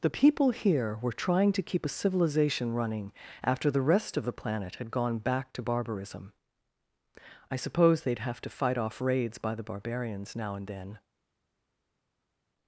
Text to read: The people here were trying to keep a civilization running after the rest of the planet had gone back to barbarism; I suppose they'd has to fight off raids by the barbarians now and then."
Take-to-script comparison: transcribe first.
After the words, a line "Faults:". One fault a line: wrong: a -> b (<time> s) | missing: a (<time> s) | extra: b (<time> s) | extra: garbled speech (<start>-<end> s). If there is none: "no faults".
The people here were trying to keep a civilization running after the rest of the planet had gone back to barbarism; I suppose they'd have to fight off raids by the barbarians now and then."
Faults:
wrong: has -> have (8.2 s)